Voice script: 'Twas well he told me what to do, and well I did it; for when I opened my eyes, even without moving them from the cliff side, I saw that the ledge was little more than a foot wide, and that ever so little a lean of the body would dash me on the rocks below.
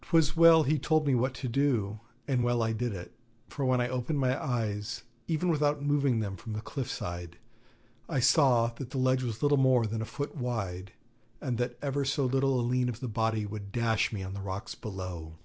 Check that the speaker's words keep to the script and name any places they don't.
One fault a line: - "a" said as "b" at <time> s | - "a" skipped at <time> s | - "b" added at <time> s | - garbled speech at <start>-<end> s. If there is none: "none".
none